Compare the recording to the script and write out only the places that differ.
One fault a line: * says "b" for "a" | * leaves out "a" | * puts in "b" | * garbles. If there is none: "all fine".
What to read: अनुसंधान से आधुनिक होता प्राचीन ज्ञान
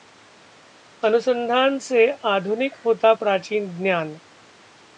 all fine